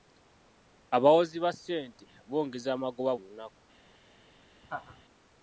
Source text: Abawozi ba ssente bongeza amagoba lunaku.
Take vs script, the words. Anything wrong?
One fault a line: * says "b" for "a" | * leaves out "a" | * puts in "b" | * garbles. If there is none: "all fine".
all fine